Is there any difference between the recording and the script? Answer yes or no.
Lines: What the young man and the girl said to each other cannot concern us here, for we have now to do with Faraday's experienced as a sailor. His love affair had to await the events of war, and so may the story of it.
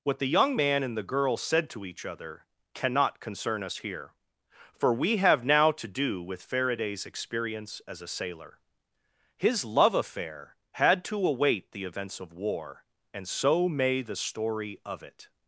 yes